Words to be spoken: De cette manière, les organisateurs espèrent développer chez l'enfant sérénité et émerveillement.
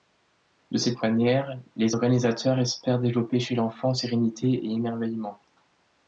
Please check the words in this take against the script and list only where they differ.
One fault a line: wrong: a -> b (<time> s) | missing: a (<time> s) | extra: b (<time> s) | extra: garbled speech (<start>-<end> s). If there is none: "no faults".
no faults